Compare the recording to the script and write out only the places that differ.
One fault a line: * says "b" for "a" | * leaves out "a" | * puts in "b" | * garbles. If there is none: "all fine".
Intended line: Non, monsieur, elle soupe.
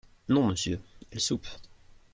all fine